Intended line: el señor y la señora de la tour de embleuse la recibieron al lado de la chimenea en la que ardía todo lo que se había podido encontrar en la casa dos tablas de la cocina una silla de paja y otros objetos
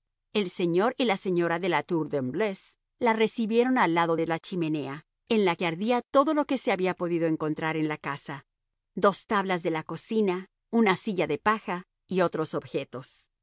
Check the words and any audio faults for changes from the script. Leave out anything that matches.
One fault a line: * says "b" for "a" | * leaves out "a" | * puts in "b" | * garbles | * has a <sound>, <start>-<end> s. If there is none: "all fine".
all fine